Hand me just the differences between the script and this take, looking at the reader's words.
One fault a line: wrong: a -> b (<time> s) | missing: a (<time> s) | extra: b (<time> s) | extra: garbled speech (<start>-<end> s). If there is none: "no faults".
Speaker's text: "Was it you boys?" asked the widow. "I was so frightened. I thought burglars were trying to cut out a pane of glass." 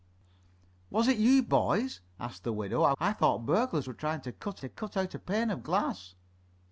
missing: was so frightened (2.9 s)
extra: to cut (4.6 s)